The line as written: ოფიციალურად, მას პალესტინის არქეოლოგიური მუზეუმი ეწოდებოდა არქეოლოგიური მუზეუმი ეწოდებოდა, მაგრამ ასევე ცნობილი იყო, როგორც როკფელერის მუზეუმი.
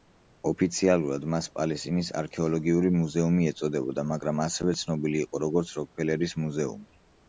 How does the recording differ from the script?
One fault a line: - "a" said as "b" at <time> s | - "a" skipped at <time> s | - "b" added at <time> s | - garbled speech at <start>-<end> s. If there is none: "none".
- "არქეოლოგიური მუზეუმი ეწოდებოდა" skipped at 4.1 s